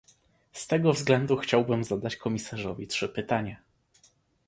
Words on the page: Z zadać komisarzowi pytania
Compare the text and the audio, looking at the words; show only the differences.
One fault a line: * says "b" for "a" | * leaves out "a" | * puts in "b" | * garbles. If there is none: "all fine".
* puts in "tego względu chciałbym"
* puts in "trzy"